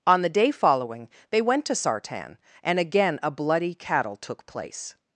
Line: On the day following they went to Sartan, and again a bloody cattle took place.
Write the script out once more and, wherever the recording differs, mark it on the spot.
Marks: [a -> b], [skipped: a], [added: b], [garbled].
On the day following they went to Sartan, and again a bloody cattle took place.